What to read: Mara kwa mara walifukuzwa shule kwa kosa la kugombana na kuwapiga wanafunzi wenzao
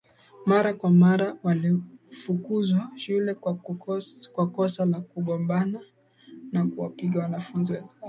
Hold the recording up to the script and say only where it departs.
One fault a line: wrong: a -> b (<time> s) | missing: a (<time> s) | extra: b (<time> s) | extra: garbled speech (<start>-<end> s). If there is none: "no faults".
no faults